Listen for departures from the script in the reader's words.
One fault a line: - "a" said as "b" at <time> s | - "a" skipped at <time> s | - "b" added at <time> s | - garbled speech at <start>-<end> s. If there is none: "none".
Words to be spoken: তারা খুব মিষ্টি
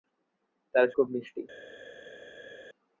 none